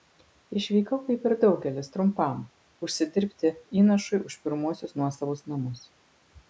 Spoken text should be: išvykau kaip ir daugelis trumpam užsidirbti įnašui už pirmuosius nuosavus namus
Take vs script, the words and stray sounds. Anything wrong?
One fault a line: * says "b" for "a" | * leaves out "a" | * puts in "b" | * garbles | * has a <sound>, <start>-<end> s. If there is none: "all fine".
all fine